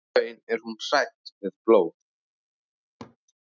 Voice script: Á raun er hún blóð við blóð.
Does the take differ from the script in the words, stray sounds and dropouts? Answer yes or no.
yes